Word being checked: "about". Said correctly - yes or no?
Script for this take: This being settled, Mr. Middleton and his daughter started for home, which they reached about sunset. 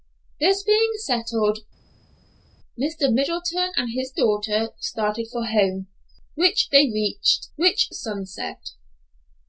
no